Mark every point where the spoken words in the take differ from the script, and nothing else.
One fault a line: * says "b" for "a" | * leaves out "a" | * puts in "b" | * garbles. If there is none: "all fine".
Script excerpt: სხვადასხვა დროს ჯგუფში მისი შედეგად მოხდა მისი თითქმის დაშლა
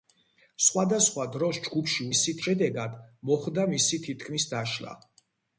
all fine